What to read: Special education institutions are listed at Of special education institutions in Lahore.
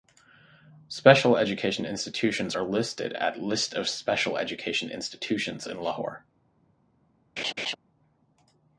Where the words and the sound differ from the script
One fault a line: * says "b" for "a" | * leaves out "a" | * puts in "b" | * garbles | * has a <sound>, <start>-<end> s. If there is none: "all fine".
* puts in "List"
* has a laugh, 7.4-7.8 s